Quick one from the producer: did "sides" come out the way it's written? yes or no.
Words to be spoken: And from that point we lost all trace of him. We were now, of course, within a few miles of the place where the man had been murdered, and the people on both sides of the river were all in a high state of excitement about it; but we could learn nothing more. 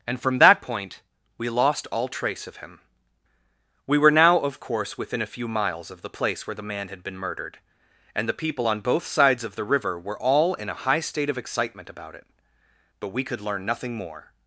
yes